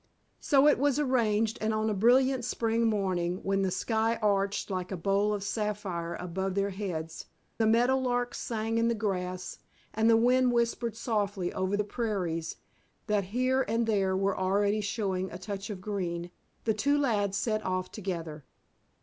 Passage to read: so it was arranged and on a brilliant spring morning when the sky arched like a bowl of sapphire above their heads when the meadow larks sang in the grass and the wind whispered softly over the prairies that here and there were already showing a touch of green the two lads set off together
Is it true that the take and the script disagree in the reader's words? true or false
true